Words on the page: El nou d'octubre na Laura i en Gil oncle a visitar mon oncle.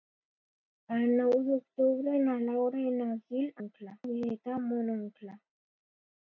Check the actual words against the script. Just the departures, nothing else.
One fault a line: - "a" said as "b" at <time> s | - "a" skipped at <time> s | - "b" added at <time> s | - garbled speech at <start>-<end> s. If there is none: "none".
none